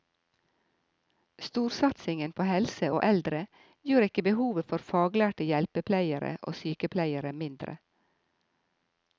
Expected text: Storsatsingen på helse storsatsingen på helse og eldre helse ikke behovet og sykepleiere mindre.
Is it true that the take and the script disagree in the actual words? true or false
true